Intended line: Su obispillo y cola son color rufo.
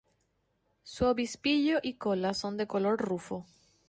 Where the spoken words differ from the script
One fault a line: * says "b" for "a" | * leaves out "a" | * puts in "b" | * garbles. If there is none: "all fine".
* puts in "de"